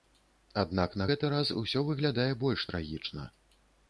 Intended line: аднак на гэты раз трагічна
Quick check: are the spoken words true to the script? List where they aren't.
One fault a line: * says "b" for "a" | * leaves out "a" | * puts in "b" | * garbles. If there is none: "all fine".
* puts in "усё выглядае больш"